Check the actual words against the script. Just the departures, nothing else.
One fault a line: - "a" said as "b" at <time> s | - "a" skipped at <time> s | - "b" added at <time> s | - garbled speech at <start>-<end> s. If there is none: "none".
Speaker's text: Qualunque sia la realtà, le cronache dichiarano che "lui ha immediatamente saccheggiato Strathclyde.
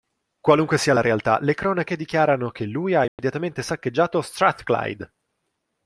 none